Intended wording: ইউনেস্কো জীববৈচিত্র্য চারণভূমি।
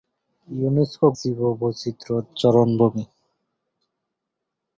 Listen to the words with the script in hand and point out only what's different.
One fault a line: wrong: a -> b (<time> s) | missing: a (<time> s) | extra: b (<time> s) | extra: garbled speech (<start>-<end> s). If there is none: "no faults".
no faults